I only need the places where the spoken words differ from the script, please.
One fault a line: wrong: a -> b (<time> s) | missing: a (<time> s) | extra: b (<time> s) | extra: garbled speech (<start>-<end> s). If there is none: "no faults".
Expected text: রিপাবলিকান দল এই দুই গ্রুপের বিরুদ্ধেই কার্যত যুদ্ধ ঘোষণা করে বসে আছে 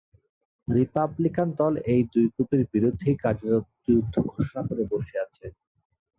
no faults